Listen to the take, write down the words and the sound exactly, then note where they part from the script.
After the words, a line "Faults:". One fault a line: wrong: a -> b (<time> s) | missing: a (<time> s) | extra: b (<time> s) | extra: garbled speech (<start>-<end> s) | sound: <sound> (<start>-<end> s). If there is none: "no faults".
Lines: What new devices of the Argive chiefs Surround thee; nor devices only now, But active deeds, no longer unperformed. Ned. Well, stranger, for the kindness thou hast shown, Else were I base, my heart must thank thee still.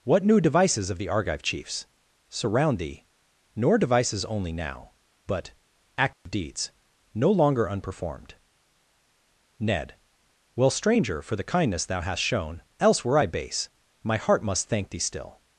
What new devices of the Argive chiefs Surround thee; nor devices only now, But active deeds, no longer unperformed. Ned. Well, stranger, for the kindness thou hast shown, Else were I base, my heart must thank thee still.
Faults:
sound: dropout (6.1-6.3 s)